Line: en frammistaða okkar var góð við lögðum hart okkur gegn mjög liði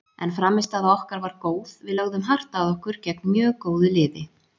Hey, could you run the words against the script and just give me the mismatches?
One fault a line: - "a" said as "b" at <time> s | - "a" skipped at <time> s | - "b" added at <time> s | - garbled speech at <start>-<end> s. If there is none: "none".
- "að" added at 2.6 s
- "góðu" added at 3.7 s